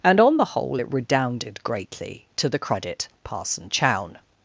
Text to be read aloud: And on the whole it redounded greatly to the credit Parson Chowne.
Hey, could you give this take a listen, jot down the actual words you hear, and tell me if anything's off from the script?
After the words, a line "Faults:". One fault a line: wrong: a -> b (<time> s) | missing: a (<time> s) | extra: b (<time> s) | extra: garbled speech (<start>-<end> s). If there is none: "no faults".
And on the whole it redounded greatly to the credit Parson Chowne.
Faults:
no faults